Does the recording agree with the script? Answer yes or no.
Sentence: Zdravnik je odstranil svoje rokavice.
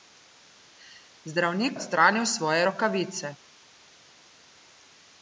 no